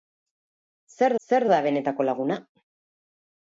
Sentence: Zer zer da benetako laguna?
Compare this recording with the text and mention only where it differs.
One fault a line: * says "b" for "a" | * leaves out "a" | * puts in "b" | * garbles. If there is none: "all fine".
all fine